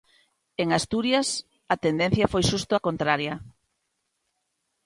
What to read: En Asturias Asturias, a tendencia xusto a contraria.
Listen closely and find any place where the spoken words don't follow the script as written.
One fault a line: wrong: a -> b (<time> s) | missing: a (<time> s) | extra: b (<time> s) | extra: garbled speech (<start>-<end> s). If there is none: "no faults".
missing: Asturias (1.3 s)
extra: foi (2.3 s)